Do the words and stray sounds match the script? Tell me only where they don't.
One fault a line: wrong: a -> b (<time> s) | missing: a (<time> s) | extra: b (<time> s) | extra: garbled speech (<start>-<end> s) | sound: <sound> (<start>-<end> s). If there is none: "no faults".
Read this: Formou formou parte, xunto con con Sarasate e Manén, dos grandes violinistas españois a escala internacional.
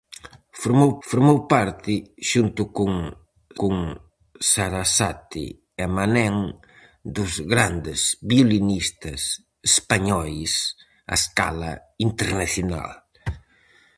no faults